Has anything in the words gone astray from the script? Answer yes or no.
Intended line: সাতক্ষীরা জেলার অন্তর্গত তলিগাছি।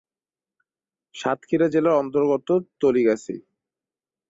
no